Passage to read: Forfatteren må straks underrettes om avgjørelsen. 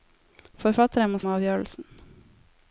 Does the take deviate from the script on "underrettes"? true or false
true